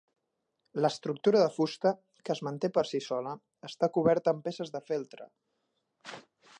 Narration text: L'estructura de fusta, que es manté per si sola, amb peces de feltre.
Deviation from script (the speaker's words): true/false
true